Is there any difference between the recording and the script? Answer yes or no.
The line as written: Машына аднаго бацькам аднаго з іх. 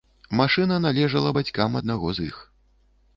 yes